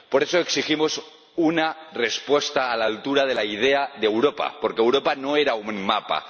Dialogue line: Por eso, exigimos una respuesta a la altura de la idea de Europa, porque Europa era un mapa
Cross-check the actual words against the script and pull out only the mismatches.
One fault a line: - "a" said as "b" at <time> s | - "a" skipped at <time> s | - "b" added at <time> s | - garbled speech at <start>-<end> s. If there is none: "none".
- "no" added at 5.1 s